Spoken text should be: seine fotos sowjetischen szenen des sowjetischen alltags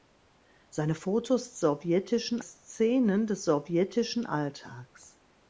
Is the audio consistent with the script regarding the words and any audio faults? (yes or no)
yes